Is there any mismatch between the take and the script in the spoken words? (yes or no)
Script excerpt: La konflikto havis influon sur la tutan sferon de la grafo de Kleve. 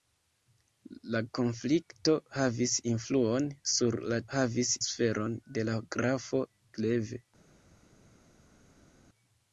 yes